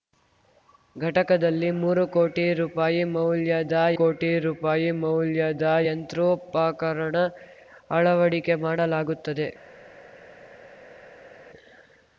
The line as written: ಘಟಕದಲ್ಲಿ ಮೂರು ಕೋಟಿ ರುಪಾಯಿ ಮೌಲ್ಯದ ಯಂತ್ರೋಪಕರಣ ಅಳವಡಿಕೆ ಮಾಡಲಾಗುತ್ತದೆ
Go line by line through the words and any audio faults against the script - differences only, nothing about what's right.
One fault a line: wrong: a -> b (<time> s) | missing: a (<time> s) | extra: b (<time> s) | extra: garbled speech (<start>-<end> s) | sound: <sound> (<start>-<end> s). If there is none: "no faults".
extra: ಕೋಟಿ ರುಪಾಯಿ ಮೌಲ್ಯದ (4.0 s)